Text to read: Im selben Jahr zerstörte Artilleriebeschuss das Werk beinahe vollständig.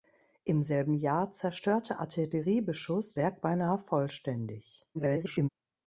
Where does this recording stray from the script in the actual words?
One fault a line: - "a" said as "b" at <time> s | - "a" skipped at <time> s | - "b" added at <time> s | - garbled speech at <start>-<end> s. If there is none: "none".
- "das" skipped at 3.1 s
- garbled speech at 4.9-5.5 s